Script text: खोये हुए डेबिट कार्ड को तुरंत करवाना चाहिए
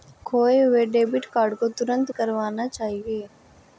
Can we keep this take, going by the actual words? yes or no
yes